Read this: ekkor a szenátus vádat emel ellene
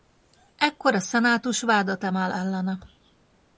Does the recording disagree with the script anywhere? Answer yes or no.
no